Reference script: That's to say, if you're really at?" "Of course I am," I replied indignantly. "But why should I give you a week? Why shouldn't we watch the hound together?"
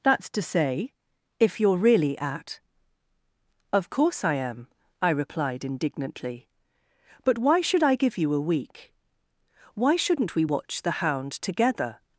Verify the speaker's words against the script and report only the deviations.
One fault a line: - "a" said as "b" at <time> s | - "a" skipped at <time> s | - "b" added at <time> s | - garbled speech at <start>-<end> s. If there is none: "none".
none